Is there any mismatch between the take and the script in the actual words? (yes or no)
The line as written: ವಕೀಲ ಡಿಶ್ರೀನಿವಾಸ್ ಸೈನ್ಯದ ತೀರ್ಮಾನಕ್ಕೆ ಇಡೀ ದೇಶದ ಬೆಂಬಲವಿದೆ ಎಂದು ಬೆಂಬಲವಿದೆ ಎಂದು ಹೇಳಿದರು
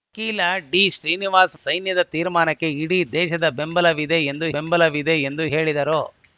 no